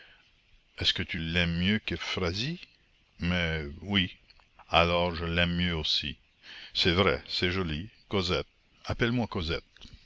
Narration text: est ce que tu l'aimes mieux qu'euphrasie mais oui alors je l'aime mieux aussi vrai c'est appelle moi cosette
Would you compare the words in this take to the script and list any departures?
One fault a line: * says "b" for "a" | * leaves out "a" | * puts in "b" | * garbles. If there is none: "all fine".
* puts in "c'est"
* puts in "joli cosette"